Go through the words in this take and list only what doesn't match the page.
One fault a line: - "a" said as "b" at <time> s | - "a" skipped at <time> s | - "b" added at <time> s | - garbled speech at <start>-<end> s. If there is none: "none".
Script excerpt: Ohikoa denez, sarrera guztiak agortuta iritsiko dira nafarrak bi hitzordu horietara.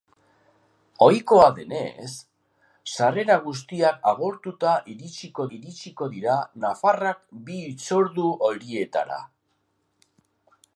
- "iritsiko" added at 5.6 s